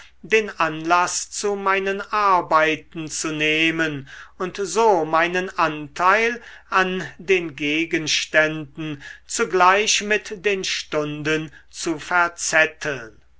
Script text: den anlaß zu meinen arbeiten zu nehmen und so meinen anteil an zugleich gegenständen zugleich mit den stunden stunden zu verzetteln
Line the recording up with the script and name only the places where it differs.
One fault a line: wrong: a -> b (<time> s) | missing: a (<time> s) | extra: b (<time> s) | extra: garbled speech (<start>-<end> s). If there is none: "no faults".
wrong: zugleich -> den (7.2 s)
missing: stunden (11.5 s)